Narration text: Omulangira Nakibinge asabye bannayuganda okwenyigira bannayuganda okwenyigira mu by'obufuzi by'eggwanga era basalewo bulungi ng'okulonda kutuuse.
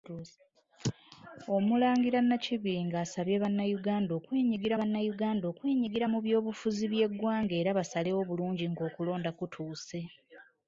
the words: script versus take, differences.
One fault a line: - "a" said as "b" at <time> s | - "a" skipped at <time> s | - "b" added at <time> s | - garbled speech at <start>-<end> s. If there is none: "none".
none